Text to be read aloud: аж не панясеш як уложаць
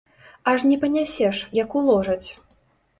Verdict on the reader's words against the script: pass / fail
pass